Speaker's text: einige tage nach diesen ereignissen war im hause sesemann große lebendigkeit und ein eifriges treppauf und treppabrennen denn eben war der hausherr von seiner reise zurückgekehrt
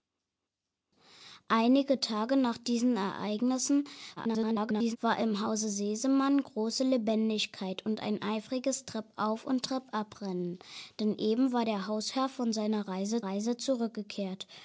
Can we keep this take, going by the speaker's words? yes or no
no